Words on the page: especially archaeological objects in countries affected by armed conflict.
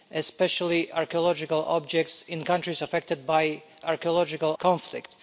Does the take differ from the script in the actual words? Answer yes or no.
yes